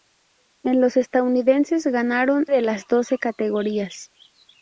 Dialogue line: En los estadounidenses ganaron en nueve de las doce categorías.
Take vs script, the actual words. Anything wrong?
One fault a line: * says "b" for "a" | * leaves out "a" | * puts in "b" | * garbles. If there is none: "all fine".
* leaves out "en nueve"